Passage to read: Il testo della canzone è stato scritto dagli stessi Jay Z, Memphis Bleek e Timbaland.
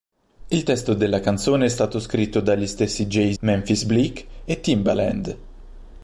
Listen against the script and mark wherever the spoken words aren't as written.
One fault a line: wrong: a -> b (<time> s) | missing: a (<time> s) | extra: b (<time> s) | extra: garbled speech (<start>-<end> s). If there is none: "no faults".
missing: Z (3.3 s)